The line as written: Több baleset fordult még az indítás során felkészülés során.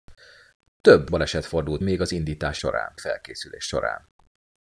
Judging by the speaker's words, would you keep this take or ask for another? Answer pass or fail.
pass